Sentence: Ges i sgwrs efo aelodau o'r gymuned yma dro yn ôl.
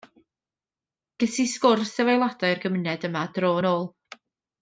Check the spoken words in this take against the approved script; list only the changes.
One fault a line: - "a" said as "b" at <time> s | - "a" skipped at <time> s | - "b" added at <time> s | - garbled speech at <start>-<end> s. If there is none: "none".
none